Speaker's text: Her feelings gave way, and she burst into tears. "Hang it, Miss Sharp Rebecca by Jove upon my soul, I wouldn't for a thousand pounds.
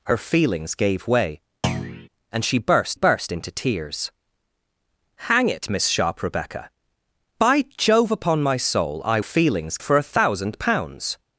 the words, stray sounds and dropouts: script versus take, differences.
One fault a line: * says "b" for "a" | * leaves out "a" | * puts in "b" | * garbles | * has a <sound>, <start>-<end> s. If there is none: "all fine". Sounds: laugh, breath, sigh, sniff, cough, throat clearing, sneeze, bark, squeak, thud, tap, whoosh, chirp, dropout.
* has a thud, 1.6-2.1 s
* puts in "burst"
* says "feelings" for "wouldn't"